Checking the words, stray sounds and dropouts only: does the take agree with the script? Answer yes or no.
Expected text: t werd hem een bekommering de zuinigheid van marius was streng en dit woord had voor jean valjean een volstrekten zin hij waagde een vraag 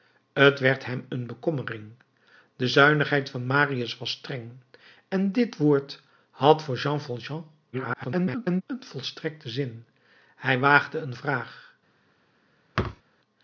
no